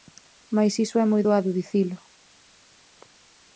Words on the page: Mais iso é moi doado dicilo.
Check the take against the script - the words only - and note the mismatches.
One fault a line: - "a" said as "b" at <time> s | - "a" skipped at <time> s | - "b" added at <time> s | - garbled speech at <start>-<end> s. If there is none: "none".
none